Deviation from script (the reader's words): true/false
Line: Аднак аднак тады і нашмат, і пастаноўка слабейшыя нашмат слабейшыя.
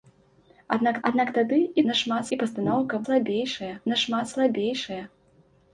false